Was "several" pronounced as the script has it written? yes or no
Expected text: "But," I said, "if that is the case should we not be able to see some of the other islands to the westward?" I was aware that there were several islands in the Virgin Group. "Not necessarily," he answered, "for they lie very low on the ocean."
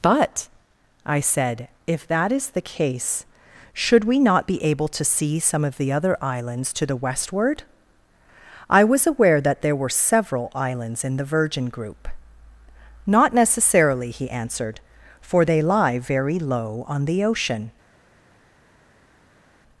yes